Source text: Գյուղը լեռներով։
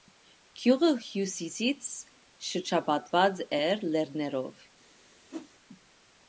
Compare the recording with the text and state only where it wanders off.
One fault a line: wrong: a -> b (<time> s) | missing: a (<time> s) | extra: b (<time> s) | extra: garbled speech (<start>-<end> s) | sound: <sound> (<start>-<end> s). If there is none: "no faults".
extra: հյուսիսից շրջապատված էր (1.1 s)
sound: whoosh (5.3-5.5 s)